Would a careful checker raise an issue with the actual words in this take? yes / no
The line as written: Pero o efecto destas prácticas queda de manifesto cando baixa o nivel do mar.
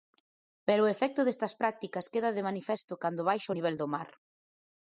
no